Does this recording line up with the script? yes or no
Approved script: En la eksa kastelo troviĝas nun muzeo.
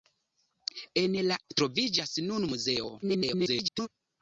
no